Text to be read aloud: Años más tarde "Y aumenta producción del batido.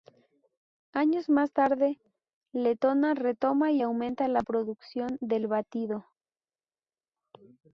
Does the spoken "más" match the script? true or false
true